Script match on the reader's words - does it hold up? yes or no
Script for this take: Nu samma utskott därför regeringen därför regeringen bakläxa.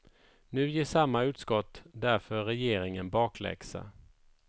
no